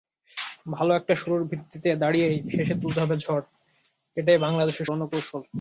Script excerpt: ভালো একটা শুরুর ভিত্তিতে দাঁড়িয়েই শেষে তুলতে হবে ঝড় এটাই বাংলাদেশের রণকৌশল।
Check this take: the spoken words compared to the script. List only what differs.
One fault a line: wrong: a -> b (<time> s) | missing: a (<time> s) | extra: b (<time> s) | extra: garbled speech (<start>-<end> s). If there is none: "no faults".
no faults